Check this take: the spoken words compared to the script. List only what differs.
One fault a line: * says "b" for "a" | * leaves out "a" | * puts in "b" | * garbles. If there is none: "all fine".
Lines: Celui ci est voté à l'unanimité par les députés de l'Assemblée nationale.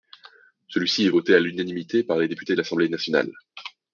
all fine